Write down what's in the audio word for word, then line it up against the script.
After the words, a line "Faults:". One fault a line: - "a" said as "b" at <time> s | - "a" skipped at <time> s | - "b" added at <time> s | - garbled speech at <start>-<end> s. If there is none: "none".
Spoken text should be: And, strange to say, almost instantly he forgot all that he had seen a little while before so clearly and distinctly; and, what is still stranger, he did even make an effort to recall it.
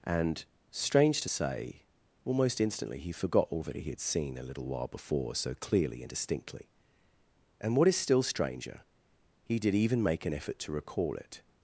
And, strange to say, almost instantly he forgot all that he had seen a little while before so clearly and distinctly; and, what is still stranger, he did even make an effort to recall it.
Faults:
none